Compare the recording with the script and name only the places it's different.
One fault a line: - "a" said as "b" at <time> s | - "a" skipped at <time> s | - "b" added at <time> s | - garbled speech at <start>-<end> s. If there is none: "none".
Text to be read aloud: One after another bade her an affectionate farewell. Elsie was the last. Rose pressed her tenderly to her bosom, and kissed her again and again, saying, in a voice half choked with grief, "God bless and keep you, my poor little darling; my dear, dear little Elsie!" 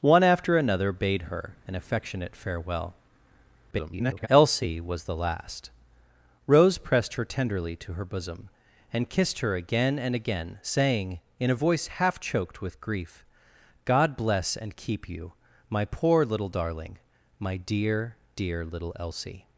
- garbled speech at 3.7-4.3 s